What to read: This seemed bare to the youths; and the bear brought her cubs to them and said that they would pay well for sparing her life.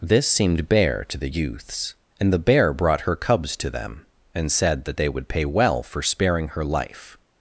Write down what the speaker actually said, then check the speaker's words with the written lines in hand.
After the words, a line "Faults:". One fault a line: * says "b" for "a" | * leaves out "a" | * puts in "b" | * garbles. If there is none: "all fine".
This seemed bare to the youths; and the bear brought her cubs to them and said that they would pay well for sparing her life.
Faults:
all fine